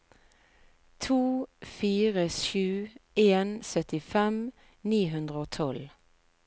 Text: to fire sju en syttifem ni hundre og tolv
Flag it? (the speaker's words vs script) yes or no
no